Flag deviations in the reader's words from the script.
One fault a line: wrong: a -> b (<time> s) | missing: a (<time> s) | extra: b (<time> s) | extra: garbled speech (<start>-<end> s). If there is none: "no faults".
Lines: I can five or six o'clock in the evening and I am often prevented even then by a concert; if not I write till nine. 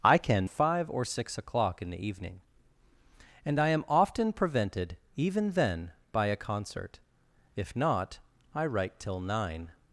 no faults